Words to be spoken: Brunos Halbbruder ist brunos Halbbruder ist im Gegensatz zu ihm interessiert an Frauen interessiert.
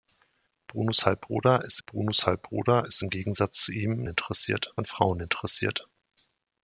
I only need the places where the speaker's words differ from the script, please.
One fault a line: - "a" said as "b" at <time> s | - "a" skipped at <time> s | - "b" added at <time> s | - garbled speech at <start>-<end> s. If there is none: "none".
none